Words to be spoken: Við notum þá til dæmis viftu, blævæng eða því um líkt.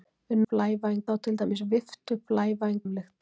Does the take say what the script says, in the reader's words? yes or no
no